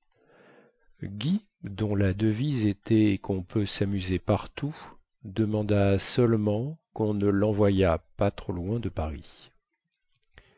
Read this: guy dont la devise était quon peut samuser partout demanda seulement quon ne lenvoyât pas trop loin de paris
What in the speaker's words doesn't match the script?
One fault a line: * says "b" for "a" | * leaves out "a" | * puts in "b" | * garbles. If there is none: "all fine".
all fine